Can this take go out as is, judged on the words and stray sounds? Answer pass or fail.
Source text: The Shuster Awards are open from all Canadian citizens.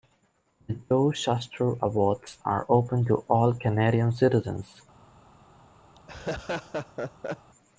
fail